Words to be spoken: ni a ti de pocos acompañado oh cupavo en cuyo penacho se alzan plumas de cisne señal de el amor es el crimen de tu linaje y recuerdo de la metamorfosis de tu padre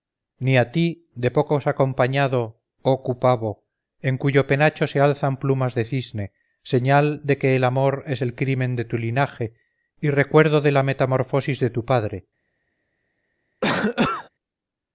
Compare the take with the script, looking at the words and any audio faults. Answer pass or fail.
fail